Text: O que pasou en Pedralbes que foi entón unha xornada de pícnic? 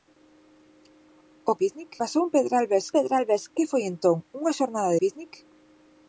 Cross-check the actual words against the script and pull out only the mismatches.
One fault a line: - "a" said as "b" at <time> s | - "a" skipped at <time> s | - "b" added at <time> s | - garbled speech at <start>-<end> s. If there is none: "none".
- "que" said as "pícnic" at 1.6 s
- "Pedralbes" added at 3.0 s
- "de" skipped at 5.0 s